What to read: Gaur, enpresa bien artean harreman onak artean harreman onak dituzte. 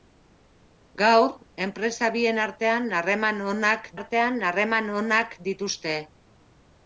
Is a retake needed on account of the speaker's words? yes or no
no